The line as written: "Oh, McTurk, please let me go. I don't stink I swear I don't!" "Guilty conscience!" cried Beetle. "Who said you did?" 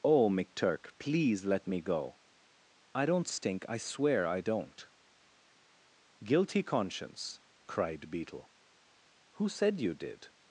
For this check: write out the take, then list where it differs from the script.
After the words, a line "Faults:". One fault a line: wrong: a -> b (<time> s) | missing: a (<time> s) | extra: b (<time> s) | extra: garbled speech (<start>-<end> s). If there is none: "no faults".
"Oh, McTurk, please let me go. I don't stink I swear I don't!" "Guilty conscience!" cried Beetle. "Who said you did?"
Faults:
no faults